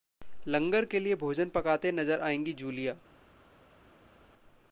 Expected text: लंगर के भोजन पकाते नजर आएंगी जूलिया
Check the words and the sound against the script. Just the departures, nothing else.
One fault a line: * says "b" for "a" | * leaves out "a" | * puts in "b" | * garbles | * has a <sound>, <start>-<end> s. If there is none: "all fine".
* puts in "लिए"